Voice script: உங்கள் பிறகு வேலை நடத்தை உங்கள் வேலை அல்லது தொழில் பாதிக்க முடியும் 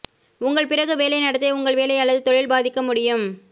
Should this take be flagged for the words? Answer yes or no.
no